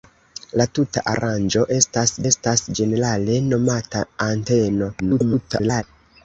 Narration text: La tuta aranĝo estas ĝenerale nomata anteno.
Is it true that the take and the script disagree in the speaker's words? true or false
true